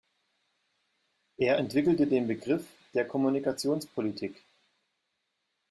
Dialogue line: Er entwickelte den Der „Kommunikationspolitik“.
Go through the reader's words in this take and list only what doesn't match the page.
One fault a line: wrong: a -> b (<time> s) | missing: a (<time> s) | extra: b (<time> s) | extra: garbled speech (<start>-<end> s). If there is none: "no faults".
extra: Begriff (2.3 s)